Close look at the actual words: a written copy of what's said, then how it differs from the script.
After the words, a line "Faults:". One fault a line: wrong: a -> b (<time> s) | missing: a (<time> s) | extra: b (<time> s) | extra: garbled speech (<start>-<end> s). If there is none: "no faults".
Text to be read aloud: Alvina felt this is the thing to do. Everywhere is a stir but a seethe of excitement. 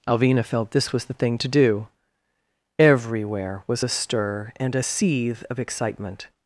Alvina felt this was the thing to do. Everywhere was a stir and a seethe of excitement.
Faults:
wrong: is -> was (0.9 s)
wrong: is -> was (3.7 s)
wrong: but -> and (4.6 s)